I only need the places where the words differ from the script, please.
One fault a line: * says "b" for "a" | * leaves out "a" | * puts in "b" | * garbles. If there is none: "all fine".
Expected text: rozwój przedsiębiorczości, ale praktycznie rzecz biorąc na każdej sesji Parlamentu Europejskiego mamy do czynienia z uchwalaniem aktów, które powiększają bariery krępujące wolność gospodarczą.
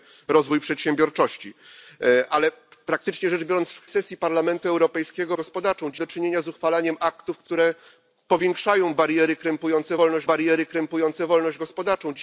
* leaves out "na każdej"
* says "gospodarczą" for "mamy"
* puts in "bariery krępujące wolność"